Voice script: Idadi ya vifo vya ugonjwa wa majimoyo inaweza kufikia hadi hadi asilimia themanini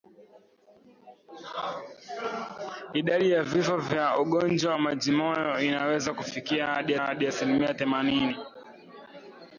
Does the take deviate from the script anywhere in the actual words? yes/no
no